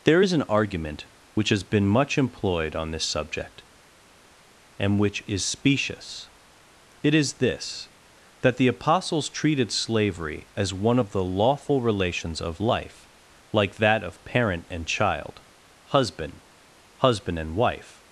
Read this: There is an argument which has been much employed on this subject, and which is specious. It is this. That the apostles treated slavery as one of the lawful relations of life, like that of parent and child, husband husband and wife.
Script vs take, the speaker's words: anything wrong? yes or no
no